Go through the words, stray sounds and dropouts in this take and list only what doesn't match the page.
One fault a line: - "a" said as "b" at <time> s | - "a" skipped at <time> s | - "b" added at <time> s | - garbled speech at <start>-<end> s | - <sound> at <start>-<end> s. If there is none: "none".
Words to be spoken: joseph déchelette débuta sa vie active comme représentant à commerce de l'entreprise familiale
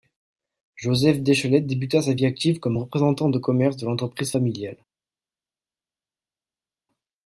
- "à" said as "de" at 3.3 s